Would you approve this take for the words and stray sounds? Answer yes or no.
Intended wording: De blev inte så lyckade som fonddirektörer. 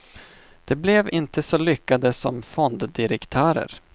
yes